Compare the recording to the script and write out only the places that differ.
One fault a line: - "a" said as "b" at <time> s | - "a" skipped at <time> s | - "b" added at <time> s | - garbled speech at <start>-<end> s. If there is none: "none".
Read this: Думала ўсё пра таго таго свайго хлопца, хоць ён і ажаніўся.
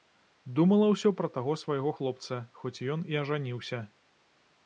- "таго" skipped at 1.5 s